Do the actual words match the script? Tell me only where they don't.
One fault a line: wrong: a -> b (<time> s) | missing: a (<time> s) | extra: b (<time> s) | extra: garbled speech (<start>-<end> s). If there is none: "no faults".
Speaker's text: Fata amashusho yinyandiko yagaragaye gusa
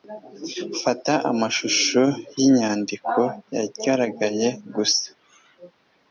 no faults